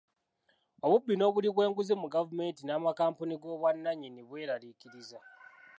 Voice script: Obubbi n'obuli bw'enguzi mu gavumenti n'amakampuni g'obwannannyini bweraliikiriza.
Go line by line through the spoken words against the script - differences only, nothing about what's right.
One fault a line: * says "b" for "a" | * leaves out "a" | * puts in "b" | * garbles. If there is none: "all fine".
all fine